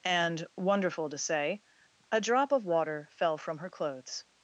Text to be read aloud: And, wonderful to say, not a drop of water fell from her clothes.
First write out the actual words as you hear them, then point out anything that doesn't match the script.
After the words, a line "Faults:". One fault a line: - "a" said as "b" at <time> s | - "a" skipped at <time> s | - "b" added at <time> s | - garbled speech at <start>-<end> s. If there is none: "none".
And, wonderful to say, a drop of water fell from her clothes.
Faults:
- "not" skipped at 1.6 s